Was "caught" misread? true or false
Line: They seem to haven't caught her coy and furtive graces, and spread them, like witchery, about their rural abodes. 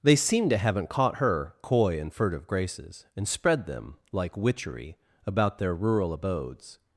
false